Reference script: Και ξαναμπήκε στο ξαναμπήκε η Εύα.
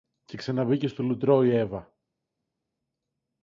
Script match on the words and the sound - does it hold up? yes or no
no